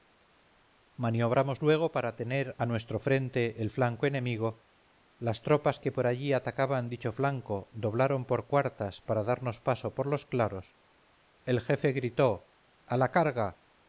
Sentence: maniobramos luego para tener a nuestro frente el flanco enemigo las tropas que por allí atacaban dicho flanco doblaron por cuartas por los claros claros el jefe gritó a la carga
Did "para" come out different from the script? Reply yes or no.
no